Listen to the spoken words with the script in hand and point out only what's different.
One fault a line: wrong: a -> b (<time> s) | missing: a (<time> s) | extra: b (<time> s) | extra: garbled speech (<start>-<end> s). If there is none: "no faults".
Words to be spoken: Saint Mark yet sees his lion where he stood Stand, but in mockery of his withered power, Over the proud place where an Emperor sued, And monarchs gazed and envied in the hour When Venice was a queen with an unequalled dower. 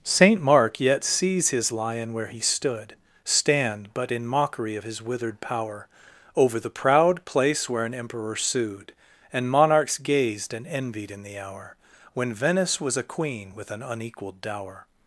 no faults